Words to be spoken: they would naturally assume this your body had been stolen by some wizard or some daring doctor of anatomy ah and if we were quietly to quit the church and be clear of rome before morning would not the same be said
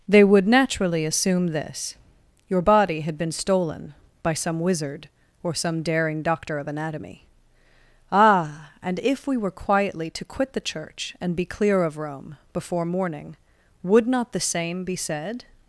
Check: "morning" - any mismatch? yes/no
no